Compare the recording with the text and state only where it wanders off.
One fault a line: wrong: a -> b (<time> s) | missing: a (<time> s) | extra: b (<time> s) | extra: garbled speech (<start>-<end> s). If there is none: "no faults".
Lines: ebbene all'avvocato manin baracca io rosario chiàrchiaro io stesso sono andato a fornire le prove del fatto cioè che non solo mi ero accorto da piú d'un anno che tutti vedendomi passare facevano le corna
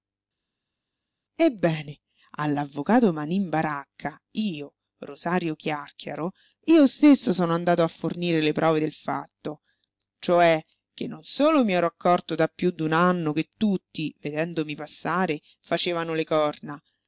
no faults